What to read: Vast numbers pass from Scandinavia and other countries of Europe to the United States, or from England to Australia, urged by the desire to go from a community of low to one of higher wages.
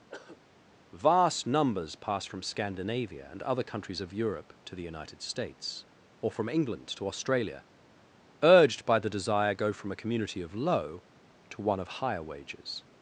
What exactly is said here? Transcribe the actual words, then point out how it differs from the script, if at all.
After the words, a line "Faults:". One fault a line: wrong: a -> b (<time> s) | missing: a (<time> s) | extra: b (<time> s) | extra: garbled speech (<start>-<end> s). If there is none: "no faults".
Vast numbers pass from Scandinavia and other countries of Europe to the United States, or from England to Australia, urged by the desire go from a community of low to one of higher wages.
Faults:
missing: to (9.5 s)